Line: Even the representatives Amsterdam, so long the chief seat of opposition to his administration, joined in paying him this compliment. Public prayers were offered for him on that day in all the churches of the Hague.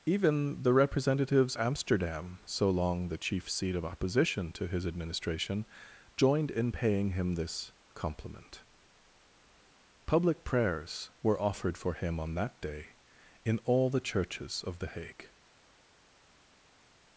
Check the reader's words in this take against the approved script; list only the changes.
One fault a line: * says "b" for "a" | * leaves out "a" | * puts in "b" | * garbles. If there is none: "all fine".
all fine